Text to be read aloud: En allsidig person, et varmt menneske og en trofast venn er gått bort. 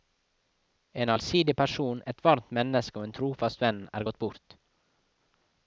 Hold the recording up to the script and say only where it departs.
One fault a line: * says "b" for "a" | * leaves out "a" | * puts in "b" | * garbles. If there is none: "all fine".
all fine